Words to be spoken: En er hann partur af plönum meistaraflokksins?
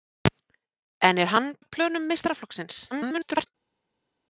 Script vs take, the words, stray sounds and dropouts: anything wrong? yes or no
yes